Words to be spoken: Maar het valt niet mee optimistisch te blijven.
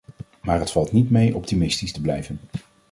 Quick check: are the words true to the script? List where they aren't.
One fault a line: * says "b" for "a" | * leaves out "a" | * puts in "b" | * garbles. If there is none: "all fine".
all fine